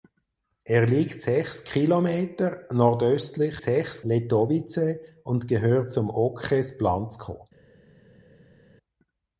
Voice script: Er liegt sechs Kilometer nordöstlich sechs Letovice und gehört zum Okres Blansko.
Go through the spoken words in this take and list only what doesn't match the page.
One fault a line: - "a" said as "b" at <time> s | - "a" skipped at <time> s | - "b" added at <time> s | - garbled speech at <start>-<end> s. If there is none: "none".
none